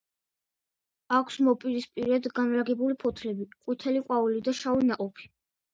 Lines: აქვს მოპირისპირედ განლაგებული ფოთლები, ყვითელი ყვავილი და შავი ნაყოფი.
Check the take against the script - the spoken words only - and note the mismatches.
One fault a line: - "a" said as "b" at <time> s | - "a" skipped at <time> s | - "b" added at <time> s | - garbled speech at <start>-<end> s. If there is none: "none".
none